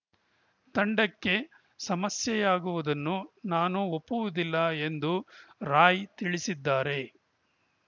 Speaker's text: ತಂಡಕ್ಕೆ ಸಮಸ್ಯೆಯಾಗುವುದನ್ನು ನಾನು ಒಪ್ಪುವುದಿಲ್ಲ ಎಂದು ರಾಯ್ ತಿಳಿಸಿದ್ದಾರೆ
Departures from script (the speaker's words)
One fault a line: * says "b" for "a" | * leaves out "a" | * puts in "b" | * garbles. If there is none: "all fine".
all fine